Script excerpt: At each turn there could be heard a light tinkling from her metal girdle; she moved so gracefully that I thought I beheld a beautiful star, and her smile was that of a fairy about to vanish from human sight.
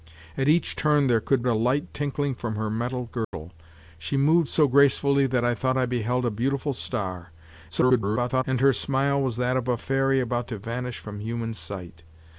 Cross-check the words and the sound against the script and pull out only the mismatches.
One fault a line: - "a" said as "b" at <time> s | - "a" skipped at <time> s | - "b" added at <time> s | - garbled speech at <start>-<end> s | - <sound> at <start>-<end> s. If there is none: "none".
- "be heard" skipped at 1.4 s
- dropout at 3.2-3.3 s
- garbled speech at 7.7-8.4 s